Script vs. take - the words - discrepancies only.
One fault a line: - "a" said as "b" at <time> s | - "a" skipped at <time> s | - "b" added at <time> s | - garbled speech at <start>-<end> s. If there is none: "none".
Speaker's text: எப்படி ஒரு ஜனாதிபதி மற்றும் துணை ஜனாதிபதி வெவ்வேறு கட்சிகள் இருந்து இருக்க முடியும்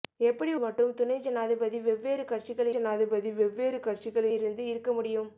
- "ஒரு" said as "மற்றும் துணை" at 0.6 s
- "மற்றும் துணை" said as "வெவ்வேறு கட்சிகள்" at 1.9 s